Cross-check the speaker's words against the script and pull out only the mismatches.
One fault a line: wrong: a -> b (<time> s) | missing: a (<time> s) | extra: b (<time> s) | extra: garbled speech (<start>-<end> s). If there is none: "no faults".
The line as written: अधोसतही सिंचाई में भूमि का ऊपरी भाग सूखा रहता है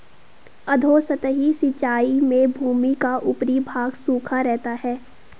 no faults